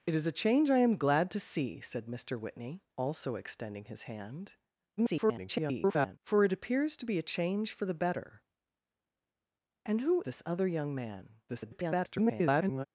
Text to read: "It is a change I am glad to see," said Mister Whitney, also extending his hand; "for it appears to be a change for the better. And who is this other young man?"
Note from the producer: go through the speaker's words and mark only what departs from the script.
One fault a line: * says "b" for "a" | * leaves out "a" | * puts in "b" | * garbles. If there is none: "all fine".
* garbles
* leaves out "is"
* garbles